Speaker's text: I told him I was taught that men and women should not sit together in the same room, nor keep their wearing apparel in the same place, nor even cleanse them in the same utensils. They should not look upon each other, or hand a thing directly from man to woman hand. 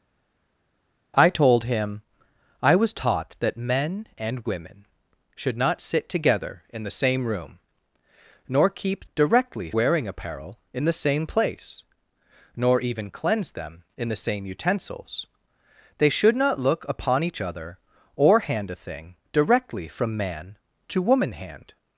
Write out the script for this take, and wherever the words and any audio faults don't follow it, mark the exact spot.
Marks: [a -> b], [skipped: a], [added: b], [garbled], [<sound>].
I told him I was taught that men and women should not sit together in the same room, nor keep [their -> directly] wearing apparel in the same place, nor even cleanse them in the same utensils. They should not look upon each other, or hand a thing directly from man to woman hand.